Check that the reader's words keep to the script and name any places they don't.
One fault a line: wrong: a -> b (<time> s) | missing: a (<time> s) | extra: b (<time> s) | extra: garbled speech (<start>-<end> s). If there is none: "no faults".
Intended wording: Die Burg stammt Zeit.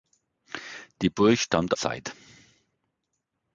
no faults